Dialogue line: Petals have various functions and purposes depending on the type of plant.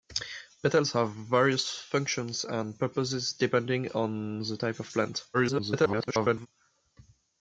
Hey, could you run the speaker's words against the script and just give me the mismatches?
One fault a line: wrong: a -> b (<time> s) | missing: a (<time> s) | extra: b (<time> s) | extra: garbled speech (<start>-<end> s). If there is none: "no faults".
extra: garbled speech (5.3-6.5 s)